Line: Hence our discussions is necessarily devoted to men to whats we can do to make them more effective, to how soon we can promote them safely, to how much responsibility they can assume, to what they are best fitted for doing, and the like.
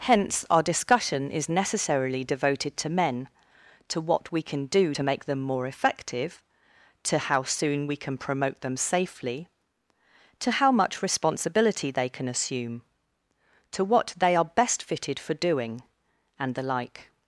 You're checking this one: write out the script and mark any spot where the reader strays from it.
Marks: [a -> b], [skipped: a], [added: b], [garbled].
Hence our [discussions -> discussion] is necessarily devoted to men to [whats -> what] we can do to make them more effective, to how soon we can promote them safely, to how much responsibility they can assume, to what they are best fitted for doing, and the like.